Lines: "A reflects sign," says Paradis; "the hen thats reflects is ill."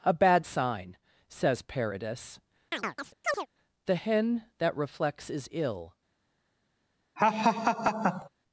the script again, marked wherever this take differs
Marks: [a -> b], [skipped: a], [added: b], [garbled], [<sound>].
"A [reflects -> bad] sign," says Paradis; [chirp] "the hen [thats -> that] reflects is ill." [laugh]